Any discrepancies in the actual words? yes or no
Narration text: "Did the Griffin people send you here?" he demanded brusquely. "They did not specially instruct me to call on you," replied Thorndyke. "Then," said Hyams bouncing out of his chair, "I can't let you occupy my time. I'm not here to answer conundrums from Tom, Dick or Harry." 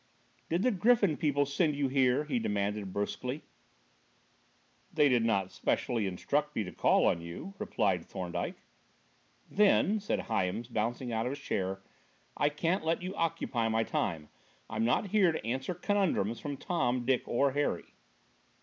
no